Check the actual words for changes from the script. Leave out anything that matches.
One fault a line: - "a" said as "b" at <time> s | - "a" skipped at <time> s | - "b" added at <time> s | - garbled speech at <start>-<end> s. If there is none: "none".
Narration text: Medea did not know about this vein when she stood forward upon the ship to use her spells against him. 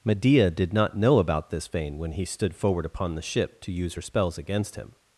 - "she" said as "he" at 2.1 s